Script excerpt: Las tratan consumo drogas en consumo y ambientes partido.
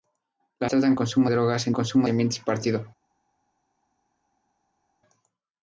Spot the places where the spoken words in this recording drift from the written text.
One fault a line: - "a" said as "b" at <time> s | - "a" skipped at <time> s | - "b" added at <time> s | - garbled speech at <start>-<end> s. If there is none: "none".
none